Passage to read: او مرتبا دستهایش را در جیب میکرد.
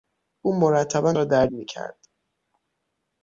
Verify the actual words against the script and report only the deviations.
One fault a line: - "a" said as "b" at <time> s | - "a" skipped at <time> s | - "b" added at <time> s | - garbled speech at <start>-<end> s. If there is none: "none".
- "دستهایش" skipped at 1.1 s
- "جیب" skipped at 1.5 s